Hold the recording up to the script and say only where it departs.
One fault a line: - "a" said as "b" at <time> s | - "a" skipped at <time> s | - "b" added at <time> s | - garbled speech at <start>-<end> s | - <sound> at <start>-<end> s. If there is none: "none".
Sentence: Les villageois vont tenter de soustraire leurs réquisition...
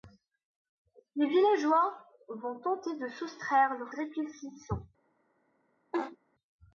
- laugh at 5.9-6.2 s